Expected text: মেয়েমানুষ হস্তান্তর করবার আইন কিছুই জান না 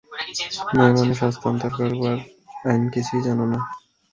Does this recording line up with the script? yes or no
yes